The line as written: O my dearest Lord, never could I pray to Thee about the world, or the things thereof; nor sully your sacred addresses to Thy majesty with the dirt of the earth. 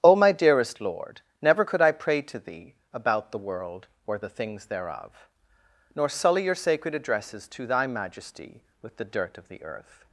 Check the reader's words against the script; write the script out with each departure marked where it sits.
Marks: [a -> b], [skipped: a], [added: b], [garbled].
O my dearest Lord, never could I pray to Thee about the world, or the things thereof; nor sully your sacred addresses to Thy majesty with the dirt of the earth.